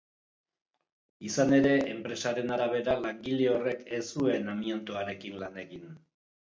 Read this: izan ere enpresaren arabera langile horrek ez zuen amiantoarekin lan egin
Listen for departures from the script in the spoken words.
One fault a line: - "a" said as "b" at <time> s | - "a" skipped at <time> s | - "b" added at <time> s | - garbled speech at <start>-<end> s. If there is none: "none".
none